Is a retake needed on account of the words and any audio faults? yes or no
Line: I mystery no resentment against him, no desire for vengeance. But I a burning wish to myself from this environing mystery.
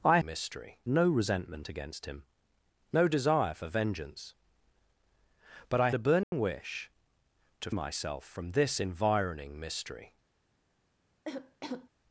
yes